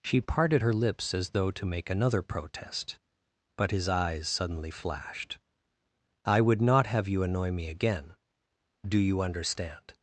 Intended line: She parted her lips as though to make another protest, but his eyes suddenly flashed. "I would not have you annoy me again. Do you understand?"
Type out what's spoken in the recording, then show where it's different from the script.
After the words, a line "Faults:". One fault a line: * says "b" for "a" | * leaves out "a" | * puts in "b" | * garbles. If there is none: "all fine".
She parted her lips as though to make another protest, but his eyes suddenly flashed. "I would not have you annoy me again. Do you understand?"
Faults:
all fine